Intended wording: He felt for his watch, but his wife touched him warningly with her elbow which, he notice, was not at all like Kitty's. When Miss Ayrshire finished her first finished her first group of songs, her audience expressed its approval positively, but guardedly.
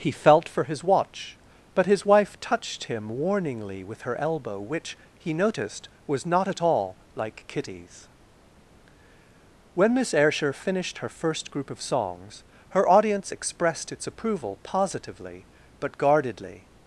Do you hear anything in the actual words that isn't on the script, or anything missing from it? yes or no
yes